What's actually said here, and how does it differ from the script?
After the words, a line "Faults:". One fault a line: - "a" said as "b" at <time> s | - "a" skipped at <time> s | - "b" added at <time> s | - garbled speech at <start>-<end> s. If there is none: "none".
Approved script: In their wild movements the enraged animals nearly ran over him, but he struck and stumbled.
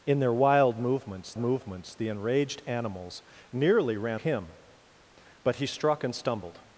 In their wild movements movements the enraged animals nearly ran him, but he struck and stumbled.
Faults:
- "movements" added at 1.4 s
- "over" skipped at 4.2 s